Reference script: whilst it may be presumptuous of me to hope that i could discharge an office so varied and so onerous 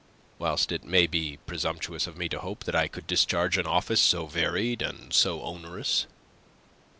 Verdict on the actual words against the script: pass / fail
pass